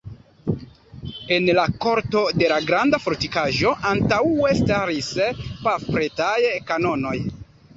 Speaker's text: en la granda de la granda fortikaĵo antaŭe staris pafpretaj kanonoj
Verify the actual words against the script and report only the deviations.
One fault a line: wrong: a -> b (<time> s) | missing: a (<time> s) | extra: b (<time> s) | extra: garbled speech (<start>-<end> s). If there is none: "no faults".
wrong: granda -> korto (1.8 s)